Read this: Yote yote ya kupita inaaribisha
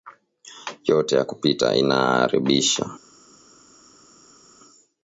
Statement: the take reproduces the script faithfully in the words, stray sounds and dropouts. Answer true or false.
false